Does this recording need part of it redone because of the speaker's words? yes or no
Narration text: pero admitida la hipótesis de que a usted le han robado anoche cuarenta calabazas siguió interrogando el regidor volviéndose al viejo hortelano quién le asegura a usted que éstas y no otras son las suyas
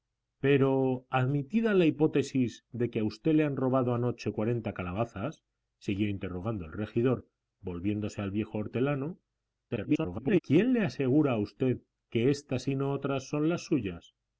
yes